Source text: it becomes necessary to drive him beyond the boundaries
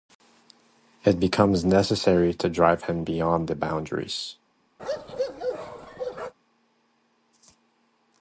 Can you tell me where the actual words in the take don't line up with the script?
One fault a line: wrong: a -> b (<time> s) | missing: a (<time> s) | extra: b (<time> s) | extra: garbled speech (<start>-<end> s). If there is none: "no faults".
no faults